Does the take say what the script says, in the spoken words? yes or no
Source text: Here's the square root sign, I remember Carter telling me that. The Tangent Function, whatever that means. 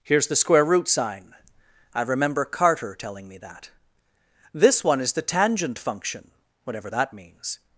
no